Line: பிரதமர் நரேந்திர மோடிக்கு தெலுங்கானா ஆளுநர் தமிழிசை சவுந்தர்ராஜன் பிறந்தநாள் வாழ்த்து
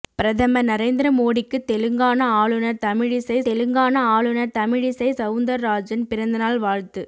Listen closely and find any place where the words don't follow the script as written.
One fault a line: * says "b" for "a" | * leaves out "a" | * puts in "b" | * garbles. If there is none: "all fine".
* puts in "தெலுங்கானா ஆளுநர் தமிழிசை"